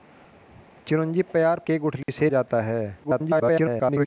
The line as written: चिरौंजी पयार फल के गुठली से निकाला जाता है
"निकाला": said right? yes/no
no